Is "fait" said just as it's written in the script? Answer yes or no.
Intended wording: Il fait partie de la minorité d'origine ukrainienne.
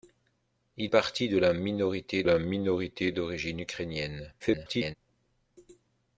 no